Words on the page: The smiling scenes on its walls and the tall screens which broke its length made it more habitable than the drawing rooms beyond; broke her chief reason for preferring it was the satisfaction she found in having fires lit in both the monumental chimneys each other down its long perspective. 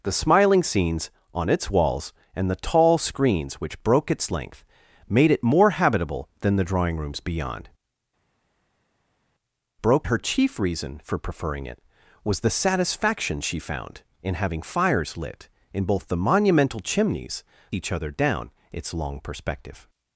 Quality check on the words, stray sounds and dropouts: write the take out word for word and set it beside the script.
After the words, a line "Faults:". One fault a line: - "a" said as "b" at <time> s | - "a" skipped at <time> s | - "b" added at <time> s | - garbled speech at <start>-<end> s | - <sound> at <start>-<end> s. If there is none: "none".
The smiling scenes on its walls and the tall screens which broke its length made it more habitable than the drawing rooms beyond; broke her chief reason for preferring it was the satisfaction she found in having fires lit in both the monumental chimneys each other down its long perspective.
Faults:
none